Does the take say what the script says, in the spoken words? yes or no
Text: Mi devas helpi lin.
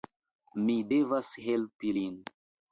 yes